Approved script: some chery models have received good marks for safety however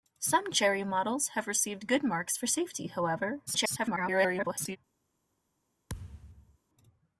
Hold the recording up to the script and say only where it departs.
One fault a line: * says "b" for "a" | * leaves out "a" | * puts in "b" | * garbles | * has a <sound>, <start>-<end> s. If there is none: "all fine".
* garbles
* has a thud, 5.9-6.6 s